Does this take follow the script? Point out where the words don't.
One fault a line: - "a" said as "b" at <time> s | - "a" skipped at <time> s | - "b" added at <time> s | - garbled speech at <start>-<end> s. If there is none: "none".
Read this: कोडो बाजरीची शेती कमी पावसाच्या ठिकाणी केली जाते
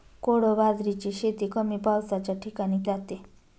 - "केली" skipped at 2.8 s